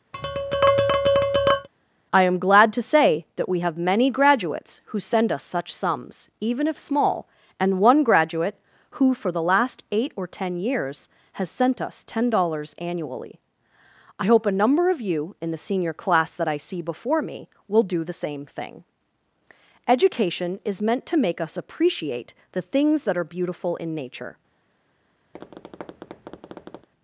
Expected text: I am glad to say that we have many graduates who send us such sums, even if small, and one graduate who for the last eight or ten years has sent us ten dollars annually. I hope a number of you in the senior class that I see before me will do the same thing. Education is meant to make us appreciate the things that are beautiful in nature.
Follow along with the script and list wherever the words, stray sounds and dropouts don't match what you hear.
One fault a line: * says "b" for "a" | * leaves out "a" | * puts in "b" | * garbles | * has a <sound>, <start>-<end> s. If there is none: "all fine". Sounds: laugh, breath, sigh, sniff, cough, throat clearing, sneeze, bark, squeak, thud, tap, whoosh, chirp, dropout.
* has a tap, 0.1-1.7 s
* has a tap, 25.3-26.9 s